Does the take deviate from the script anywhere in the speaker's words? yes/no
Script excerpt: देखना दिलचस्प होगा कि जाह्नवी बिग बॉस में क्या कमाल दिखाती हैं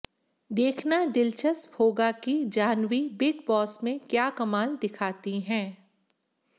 no